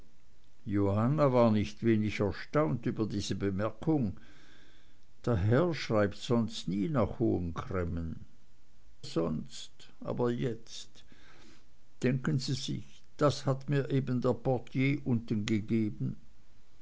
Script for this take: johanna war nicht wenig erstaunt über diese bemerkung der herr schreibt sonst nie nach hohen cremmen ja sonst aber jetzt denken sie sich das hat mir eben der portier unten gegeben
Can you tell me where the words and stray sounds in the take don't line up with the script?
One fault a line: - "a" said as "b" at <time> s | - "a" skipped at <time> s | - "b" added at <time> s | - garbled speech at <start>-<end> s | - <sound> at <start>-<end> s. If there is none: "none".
- "ja" skipped at 8.2 s